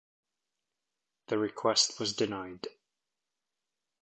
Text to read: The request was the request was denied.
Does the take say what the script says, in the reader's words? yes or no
no